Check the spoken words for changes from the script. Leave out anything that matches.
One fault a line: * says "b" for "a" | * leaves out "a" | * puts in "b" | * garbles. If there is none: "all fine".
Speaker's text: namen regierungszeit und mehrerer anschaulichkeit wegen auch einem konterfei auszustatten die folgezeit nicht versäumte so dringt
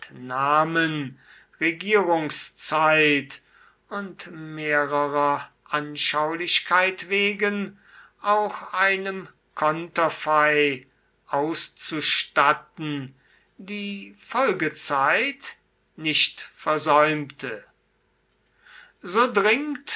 all fine